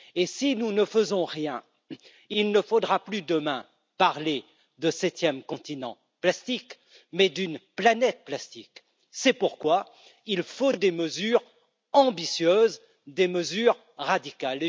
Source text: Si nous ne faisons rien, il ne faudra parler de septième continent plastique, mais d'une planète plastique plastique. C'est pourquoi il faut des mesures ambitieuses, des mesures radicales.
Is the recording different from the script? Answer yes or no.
yes